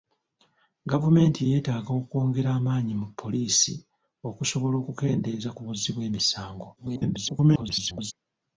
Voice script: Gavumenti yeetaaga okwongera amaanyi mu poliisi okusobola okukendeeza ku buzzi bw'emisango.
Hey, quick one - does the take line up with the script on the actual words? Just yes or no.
no